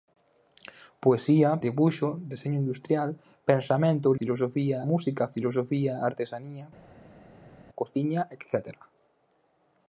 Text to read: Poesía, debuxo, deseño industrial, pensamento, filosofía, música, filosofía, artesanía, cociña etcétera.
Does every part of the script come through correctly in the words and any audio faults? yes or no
yes